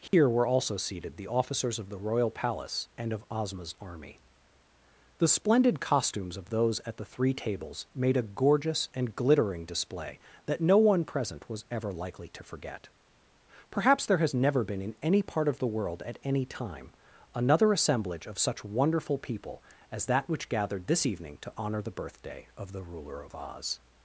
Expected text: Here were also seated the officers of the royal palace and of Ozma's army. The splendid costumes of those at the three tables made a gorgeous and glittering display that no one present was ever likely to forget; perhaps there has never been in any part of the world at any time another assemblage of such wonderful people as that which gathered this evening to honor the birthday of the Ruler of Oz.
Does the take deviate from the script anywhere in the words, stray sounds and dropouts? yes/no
yes